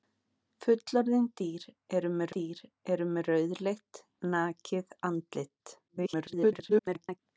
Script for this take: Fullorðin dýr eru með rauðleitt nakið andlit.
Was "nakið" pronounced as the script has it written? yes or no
yes